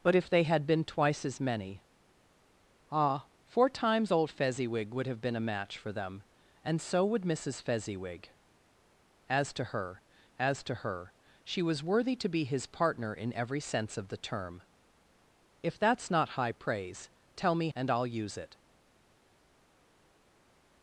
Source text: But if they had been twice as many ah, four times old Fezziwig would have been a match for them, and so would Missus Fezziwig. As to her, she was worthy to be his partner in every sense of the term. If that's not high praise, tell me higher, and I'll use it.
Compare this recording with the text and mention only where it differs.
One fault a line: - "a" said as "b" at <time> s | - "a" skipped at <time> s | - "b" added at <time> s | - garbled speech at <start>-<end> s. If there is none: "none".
- "as to her" added at 10.4 s
- "higher" skipped at 17.7 s